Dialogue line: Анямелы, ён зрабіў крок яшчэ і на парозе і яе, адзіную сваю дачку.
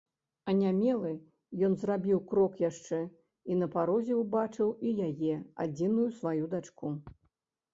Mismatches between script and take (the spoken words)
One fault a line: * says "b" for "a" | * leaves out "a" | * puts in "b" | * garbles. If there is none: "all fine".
* puts in "ўбачыў"